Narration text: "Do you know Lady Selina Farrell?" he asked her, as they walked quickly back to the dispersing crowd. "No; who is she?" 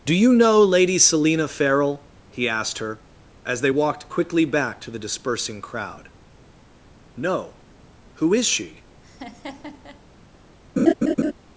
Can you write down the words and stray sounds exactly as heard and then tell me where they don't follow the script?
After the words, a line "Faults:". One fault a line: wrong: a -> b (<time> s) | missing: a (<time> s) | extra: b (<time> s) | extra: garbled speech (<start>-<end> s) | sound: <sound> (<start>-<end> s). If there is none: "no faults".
"Do you know Lady Selina Farrell?" he asked her, as they walked quickly back to the dispersing crowd. "No; who is she?"
Faults:
sound: laugh (9.0-10.0 s)
sound: laugh (10.8-11.3 s)